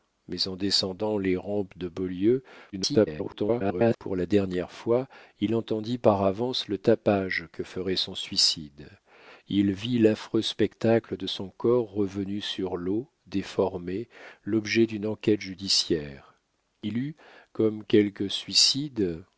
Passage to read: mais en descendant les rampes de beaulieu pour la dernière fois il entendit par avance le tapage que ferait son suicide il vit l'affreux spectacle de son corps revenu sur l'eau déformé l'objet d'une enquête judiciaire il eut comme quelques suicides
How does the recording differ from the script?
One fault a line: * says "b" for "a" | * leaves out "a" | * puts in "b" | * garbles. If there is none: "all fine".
* garbles